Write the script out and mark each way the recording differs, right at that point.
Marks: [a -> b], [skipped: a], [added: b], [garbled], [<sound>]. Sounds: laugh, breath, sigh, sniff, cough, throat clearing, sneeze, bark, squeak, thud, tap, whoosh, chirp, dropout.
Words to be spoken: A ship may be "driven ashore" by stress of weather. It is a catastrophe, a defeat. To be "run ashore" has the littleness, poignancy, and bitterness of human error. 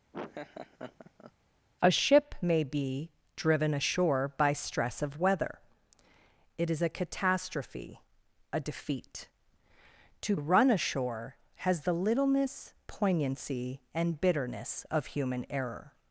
[laugh] A ship may be "driven ashore" by stress of weather. It is a catastrophe, a defeat. To [skipped: be] "run ashore" has the littleness, poignancy, and bitterness of human error.